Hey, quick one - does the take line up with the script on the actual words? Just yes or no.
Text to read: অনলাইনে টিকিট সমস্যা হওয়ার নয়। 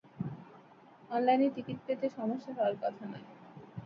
no